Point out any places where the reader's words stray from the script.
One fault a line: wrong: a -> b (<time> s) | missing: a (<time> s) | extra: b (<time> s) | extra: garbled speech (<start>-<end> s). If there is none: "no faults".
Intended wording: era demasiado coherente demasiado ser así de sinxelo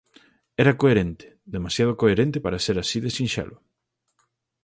extra: coherente (0.8 s)
wrong: demasiado -> para (2.4 s)